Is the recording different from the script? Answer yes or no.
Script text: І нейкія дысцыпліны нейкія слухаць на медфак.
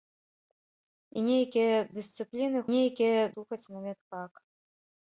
no